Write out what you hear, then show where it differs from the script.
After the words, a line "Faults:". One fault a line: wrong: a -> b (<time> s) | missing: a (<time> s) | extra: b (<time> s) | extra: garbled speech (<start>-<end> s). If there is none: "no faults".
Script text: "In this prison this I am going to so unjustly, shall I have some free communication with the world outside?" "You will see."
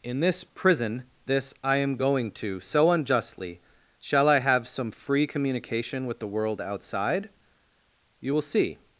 "In this prison this I am going to so unjustly, shall I have some free communication with the world outside?" "You will see."
Faults:
no faults